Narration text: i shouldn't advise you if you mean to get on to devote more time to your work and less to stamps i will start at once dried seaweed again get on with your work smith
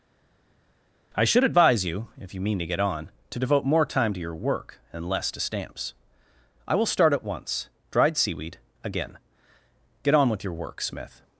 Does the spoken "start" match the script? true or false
true